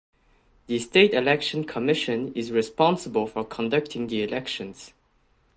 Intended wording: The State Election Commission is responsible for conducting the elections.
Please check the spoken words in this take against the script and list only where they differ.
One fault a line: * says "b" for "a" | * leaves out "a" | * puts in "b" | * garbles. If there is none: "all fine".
all fine